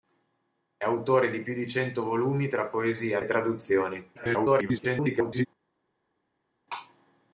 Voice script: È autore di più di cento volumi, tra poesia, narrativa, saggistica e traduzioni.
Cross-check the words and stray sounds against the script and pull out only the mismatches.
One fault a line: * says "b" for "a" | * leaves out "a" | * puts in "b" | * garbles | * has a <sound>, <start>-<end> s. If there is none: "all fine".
* leaves out "narrativa saggistica"
* garbles